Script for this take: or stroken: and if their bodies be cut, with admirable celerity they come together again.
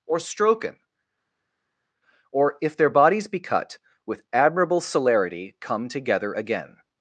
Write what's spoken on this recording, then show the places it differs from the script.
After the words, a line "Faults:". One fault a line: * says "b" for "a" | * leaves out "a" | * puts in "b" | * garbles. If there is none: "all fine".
or stroken: or if their bodies be cut, with admirable celerity come together again.
Faults:
* says "or" for "and"
* leaves out "they"